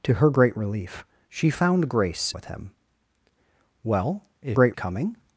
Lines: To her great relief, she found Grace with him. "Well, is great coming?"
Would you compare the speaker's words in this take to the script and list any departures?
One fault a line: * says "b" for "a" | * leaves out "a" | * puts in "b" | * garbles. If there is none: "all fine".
all fine